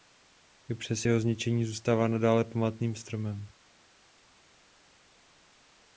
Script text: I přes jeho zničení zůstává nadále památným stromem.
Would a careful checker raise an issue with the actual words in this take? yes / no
no